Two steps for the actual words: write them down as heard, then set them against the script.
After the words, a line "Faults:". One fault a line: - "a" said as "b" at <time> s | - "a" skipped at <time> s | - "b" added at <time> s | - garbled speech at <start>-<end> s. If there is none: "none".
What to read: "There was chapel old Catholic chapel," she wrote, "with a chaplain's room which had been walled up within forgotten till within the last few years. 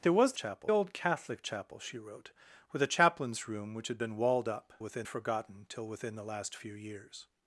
"There was chapel old Catholic chapel," she wrote, "with a chaplain's room which had been walled up within forgotten till within the last few years.
Faults:
none